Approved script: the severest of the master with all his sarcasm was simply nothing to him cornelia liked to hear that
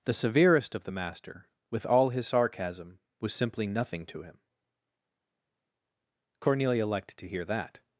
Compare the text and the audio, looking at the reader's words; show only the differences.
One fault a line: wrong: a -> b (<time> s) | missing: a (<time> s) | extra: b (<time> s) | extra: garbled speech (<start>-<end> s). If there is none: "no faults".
no faults